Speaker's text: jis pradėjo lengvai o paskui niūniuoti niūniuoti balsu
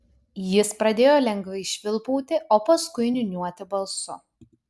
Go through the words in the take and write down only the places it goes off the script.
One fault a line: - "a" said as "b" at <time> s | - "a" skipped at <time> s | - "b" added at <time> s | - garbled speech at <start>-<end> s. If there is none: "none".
- "švilpauti" added at 1.7 s
- "niūniuoti" skipped at 3.7 s